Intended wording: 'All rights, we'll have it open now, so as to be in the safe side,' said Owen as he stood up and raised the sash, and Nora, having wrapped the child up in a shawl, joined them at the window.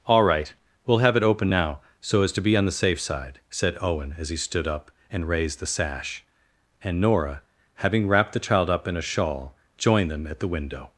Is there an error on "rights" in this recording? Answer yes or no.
yes